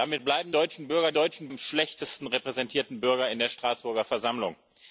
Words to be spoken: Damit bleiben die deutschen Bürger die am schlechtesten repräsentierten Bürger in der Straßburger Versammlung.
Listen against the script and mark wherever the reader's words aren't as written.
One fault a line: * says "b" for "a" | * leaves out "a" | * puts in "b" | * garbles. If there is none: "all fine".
* leaves out "die"
* says "deutschen" for "die"